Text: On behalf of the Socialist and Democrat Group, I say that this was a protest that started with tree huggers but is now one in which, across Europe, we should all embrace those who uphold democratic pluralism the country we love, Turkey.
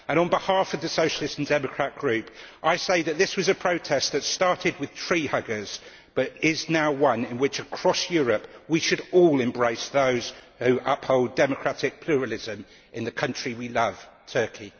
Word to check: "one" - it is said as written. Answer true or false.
true